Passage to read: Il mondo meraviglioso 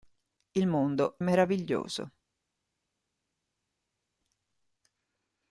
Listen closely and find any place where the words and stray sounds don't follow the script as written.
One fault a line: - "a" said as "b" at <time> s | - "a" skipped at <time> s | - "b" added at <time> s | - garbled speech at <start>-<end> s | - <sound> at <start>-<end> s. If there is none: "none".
none